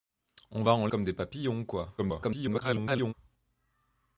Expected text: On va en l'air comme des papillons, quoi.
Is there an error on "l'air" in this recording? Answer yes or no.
yes